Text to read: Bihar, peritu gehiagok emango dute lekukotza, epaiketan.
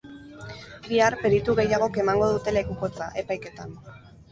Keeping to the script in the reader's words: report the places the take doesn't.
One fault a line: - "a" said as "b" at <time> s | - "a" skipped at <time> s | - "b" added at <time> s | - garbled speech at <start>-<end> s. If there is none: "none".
none